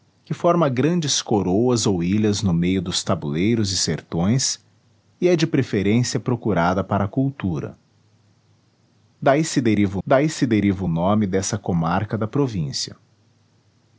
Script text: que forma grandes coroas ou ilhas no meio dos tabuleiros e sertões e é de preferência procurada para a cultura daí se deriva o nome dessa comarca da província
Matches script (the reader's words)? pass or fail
fail